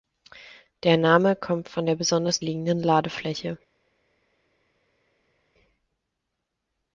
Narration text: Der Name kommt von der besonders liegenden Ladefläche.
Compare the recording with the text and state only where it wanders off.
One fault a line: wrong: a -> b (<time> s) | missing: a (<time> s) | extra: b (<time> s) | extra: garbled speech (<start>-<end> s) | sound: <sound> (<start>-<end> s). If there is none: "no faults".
no faults